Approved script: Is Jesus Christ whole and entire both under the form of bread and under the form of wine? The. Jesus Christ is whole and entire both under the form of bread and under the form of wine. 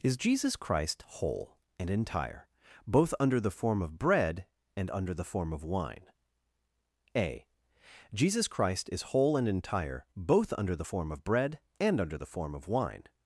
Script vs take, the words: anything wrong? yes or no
yes